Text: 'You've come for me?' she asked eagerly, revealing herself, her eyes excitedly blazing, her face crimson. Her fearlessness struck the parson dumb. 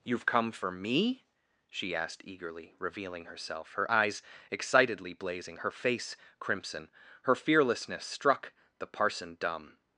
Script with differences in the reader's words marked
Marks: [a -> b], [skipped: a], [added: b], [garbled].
'You've come for me?' she asked eagerly, revealing herself, her eyes excitedly blazing, her face crimson. Her fearlessness struck the parson dumb.